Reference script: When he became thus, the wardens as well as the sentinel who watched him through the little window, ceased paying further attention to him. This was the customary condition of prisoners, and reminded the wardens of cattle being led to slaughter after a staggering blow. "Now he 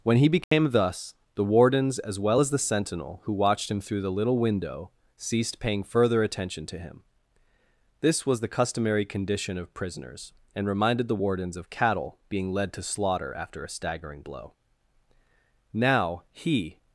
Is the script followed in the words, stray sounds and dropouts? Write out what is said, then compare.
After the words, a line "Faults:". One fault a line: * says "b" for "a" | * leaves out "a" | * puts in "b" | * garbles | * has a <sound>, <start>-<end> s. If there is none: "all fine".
When he became thus, the wardens as well as the sentinel who watched him through the little window, ceased paying further attention to him. This was the customary condition of prisoners, and reminded the wardens of cattle being led to slaughter after a staggering blow. "Now he
Faults:
* has a dropout, 0.4-0.5 s